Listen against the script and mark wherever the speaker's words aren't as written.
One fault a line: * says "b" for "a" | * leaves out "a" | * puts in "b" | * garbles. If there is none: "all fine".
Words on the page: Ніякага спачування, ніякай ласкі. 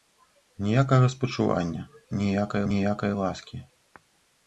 * puts in "ніякай"